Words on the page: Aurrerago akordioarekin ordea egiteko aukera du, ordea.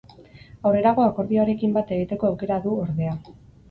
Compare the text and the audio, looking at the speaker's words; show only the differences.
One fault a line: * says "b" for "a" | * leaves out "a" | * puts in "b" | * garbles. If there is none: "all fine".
* says "bat" for "ordea"